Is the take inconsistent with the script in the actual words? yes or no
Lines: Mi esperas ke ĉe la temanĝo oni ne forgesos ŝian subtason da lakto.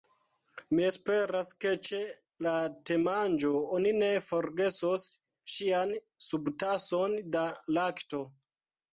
no